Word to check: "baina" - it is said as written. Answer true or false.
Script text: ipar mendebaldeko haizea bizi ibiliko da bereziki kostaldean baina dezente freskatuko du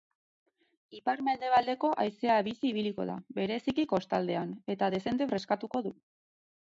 false